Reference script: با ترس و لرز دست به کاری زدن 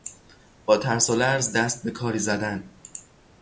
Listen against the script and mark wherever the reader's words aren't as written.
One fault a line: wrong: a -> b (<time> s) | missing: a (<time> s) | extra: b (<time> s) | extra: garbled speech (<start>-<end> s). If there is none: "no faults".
no faults